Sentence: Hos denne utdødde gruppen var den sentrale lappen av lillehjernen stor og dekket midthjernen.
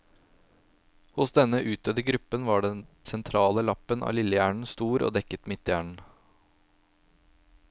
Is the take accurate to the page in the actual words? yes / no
yes